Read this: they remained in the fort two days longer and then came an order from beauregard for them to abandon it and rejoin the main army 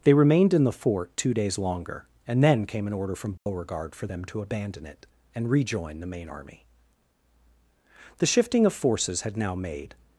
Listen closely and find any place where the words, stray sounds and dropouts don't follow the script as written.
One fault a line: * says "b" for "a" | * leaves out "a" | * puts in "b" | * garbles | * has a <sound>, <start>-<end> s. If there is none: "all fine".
* has a dropout, 3.4-3.5 s
* puts in "the shifting of forces had now made"